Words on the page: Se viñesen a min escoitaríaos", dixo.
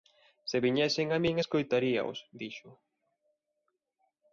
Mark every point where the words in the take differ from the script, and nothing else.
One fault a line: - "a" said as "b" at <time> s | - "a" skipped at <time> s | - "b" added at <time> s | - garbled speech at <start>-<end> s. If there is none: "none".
none